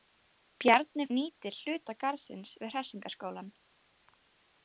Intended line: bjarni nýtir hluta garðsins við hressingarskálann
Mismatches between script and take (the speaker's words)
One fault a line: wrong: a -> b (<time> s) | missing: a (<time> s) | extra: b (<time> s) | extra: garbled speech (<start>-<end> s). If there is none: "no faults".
no faults